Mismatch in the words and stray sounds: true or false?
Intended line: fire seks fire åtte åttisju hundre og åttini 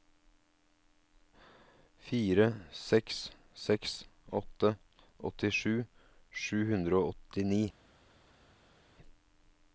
true